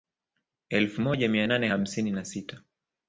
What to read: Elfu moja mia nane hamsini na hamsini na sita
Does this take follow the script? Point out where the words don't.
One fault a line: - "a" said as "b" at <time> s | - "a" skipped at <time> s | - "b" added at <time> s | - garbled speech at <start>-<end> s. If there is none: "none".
- "hamsini na" skipped at 2.2 s